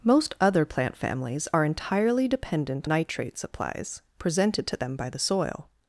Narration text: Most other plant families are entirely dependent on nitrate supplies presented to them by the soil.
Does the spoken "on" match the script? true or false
false